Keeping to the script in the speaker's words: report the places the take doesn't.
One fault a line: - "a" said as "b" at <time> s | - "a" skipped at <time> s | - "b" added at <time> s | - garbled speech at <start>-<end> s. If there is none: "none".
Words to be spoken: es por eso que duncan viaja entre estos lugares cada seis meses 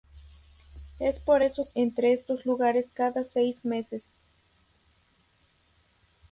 - "que duncan viaja" skipped at 1.7 s